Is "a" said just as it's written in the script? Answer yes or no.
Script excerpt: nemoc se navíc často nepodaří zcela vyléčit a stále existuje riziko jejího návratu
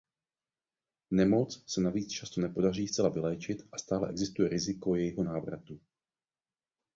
yes